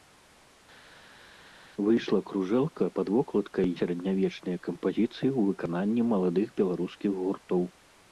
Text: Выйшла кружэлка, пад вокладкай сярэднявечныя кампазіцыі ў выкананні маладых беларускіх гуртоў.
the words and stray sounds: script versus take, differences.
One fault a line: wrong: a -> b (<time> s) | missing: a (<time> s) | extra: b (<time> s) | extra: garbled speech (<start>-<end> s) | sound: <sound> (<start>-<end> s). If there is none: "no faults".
no faults